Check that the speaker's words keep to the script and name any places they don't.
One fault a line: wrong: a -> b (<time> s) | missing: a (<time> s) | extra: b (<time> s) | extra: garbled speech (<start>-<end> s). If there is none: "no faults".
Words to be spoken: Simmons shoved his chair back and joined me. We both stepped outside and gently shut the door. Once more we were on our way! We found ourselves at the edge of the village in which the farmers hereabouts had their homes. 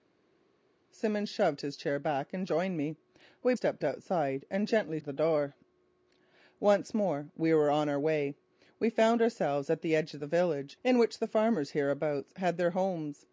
missing: both (3.5 s)
missing: shut (5.0 s)